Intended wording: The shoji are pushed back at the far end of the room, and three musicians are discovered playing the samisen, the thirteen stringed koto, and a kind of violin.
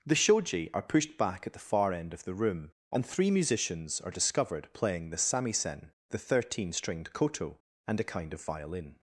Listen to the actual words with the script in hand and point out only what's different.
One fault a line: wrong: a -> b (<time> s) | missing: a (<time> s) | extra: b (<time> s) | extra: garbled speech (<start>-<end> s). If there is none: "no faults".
no faults